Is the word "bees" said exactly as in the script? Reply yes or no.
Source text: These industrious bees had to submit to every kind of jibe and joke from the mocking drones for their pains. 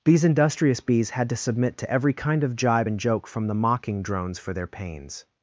yes